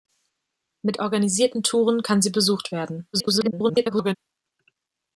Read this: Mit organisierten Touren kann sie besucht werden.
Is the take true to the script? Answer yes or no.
no